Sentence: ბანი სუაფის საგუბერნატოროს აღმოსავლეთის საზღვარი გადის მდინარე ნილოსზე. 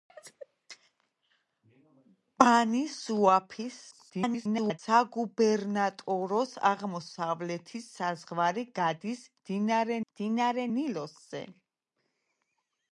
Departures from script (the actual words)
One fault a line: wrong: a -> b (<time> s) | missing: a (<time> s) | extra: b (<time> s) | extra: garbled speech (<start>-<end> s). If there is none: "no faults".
extra: garbled speech (3.9-4.8 s)
extra: მდინარე (10.0 s)